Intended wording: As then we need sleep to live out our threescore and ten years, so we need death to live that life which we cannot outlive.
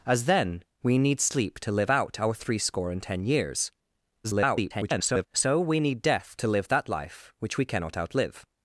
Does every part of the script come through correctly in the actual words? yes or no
no